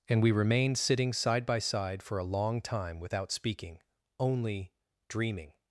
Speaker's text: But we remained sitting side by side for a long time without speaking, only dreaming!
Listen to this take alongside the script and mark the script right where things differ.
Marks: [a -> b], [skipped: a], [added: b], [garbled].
[But -> And] we remained sitting side by side for a long time without speaking, only dreaming!